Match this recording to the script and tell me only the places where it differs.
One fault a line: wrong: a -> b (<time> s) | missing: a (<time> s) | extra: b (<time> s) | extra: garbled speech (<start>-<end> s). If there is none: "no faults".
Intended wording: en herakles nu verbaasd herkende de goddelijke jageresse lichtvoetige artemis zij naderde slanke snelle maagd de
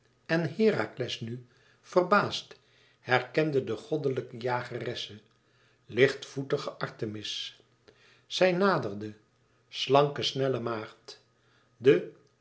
no faults